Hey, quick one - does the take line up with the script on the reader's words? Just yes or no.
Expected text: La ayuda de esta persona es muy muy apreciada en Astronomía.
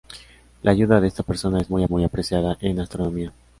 yes